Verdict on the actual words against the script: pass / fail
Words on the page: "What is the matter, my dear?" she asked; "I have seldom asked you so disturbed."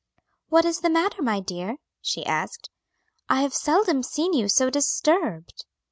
fail